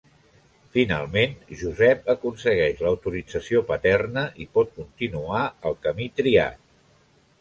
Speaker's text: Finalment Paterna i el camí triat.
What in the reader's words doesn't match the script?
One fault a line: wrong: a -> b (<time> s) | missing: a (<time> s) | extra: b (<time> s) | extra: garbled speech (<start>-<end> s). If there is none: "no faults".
extra: Josep aconsegueix l'autorització (1.6 s)
extra: pot continuar (4.6 s)